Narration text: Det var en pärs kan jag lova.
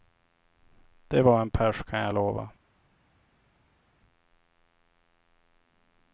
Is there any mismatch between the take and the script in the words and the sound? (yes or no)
no